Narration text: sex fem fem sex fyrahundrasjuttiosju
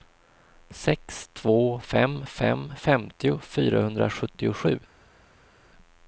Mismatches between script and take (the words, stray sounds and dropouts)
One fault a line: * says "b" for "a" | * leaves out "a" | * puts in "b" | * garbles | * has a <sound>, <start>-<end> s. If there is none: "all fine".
* puts in "två"
* says "femtio" for "sex"